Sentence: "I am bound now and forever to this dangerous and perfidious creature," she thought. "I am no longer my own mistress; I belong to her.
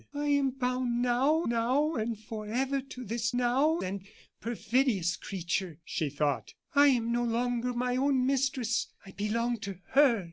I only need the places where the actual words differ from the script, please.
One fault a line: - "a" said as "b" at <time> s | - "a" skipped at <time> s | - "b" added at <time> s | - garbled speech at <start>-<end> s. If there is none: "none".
- "now" added at 1.5 s
- "dangerous" said as "now" at 3.4 s